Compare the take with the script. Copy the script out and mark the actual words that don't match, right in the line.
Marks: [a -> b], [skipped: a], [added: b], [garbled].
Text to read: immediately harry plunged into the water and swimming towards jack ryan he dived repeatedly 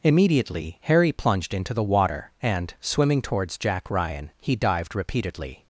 immediately harry plunged into the water and swimming towards jack ryan he dived repeatedly